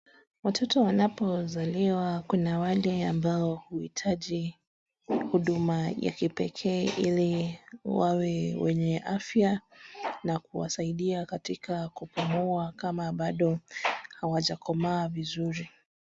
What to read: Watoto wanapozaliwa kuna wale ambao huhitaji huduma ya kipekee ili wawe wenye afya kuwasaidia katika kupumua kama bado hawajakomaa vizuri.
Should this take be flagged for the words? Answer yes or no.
yes